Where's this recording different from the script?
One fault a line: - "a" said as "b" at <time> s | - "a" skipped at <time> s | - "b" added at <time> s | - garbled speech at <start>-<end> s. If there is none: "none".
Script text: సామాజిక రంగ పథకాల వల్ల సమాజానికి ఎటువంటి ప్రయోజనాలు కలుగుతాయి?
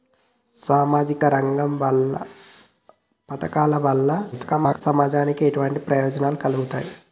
- garbled speech at 4.3-4.8 s